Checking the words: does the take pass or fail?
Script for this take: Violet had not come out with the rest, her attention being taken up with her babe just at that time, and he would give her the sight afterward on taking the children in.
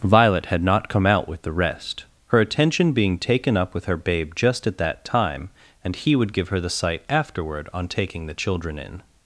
pass